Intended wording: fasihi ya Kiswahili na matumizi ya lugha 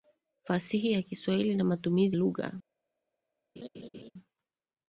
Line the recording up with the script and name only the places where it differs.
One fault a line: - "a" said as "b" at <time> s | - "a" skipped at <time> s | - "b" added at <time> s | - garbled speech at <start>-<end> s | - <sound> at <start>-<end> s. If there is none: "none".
- "ya" skipped at 2.2 s
- laugh at 3.6-4.1 s